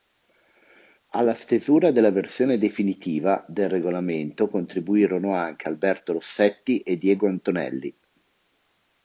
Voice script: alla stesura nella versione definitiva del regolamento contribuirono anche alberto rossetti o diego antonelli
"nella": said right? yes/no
no